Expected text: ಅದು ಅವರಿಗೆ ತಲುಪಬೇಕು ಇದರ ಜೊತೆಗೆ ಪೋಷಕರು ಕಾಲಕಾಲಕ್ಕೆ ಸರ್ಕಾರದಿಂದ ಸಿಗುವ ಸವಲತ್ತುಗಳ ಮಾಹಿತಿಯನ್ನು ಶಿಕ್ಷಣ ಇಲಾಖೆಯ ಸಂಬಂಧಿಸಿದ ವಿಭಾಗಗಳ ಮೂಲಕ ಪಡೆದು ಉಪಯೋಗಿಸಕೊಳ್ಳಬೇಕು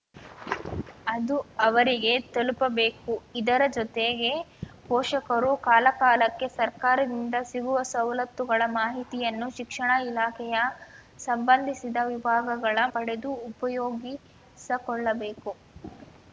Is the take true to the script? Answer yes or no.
no